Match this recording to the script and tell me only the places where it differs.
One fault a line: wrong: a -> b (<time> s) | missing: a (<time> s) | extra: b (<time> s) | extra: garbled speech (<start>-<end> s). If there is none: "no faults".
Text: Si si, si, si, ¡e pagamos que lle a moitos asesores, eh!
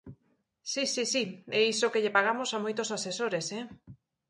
missing: si (1.2 s)
wrong: pagamos -> iso (1.7 s)
extra: pagamos (2.2 s)